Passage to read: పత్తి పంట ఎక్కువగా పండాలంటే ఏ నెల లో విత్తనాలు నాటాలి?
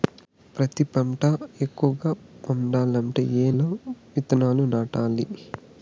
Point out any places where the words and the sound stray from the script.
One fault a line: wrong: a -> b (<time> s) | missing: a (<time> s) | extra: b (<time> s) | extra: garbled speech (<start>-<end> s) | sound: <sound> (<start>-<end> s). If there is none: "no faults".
missing: నెల (3.5 s)